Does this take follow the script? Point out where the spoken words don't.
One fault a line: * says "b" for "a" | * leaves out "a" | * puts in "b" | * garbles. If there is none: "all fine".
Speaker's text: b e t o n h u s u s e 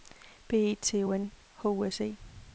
* leaves out "u s"